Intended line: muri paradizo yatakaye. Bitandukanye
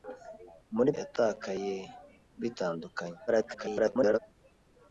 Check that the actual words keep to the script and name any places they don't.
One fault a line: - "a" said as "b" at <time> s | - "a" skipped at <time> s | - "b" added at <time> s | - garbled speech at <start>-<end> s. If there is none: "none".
- "paradizo" skipped at 0.9 s
- garbled speech at 3.3-4.2 s